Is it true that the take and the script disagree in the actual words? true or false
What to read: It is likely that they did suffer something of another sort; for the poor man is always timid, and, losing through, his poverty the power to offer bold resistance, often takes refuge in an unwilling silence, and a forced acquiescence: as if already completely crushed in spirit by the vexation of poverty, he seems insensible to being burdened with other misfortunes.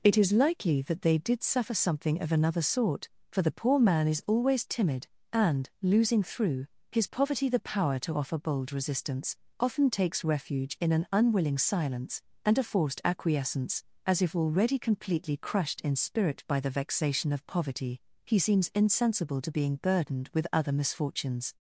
false